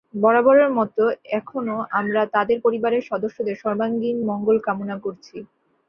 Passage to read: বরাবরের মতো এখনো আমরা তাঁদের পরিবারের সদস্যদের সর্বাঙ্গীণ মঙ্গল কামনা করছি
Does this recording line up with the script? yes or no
yes